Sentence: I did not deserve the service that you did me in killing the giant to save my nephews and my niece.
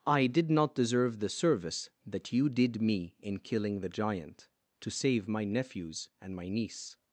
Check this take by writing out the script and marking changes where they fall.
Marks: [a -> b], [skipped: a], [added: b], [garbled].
I did not deserve the service that you did me in killing the giant to save my nephews and my niece.